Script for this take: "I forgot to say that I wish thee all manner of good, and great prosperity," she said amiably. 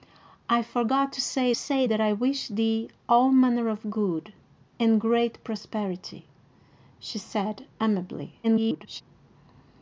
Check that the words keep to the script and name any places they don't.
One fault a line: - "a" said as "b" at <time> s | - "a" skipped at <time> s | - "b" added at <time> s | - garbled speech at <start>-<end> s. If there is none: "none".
- "say" added at 1.6 s
- garbled speech at 8.4-9.0 s